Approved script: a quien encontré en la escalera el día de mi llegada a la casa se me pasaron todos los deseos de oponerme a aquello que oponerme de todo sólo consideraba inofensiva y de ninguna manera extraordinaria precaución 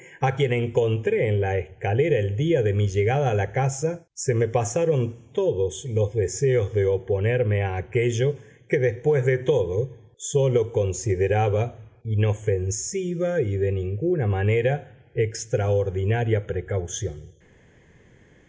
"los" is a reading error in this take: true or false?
false